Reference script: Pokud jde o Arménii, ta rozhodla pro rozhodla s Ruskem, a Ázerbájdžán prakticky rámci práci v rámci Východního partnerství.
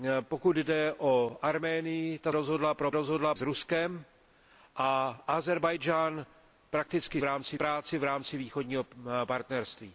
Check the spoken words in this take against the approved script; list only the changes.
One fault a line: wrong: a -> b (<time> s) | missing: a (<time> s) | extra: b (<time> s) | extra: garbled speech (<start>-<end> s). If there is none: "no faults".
no faults